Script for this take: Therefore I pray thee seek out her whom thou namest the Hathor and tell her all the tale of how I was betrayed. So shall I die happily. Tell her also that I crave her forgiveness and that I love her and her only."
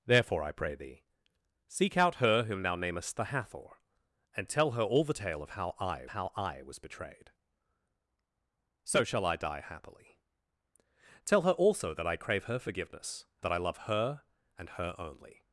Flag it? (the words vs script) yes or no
yes